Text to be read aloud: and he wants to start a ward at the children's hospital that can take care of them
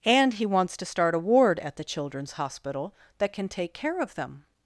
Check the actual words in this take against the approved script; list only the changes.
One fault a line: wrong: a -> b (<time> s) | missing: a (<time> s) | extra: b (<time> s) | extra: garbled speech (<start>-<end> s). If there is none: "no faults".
no faults